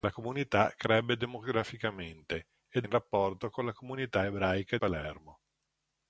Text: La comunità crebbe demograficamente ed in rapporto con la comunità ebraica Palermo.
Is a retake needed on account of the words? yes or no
no